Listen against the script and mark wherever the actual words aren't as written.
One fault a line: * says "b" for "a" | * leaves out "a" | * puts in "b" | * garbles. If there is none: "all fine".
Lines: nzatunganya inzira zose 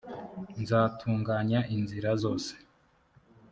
all fine